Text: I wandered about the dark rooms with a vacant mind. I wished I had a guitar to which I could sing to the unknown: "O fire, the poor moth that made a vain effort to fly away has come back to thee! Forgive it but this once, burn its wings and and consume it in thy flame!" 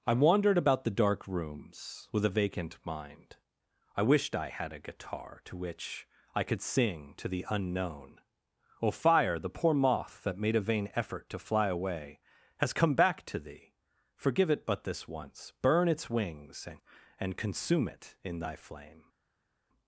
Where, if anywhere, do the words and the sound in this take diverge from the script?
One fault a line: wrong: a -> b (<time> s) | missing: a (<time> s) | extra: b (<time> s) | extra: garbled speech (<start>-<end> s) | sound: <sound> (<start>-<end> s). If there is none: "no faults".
no faults